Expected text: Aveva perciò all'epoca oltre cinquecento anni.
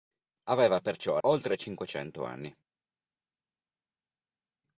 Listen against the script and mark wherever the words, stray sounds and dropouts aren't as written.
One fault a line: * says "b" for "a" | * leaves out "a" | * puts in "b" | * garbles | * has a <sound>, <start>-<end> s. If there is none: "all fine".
* leaves out "all'epoca"